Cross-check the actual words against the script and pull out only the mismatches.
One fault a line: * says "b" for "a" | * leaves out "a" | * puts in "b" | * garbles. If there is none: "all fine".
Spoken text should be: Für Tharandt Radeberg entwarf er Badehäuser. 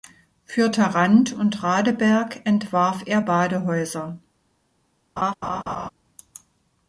* puts in "und"